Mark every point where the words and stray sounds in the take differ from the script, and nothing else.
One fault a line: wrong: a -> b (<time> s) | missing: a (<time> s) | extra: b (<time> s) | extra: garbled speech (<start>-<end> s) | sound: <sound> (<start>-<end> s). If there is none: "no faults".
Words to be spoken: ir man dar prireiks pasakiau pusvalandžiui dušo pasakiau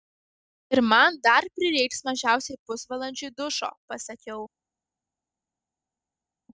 wrong: pasakiau -> mažiausiai (2.1 s)